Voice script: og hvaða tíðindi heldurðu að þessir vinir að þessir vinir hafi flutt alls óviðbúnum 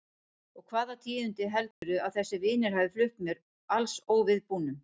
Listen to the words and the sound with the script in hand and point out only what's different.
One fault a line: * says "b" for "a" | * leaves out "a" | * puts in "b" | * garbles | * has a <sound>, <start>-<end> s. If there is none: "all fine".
* has a dropout, 1.7-1.8 s
* leaves out "að þessir vinir"
* puts in "mér"